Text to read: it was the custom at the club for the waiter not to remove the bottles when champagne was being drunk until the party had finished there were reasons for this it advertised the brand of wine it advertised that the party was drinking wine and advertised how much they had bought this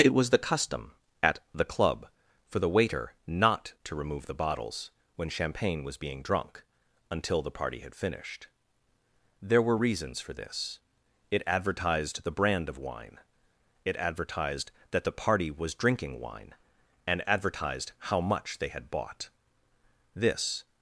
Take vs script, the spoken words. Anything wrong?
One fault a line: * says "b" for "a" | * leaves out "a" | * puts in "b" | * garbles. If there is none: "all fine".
all fine